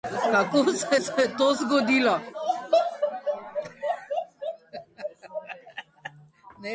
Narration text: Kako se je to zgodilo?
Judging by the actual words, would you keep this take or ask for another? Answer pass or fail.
fail